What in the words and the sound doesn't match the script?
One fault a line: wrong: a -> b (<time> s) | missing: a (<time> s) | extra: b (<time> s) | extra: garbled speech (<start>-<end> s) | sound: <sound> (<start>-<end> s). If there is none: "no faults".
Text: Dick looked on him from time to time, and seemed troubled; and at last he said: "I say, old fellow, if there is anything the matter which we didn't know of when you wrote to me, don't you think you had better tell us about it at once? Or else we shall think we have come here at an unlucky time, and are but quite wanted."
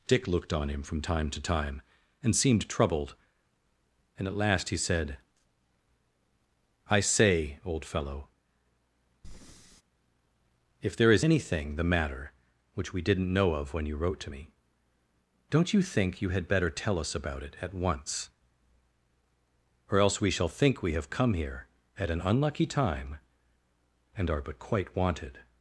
sound: breath (9.2-9.8 s)